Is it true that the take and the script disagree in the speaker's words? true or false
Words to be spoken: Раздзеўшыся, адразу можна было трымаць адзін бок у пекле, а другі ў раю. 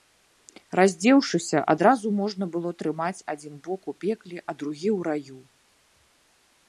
false